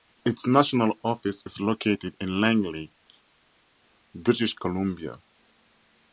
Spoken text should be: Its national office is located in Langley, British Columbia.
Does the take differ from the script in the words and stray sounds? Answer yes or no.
no